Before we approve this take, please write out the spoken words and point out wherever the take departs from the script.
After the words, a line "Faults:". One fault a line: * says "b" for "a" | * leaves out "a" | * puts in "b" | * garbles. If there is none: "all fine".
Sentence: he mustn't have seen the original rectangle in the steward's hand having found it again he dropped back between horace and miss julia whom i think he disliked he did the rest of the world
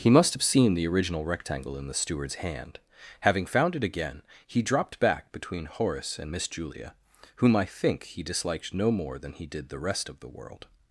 he must have seen the original rectangle in the steward's hand having found it again he dropped back between horace and miss julia whom i think he disliked no more than he did the rest of the world
Faults:
* says "must" for "mustn't"
* puts in "no more than"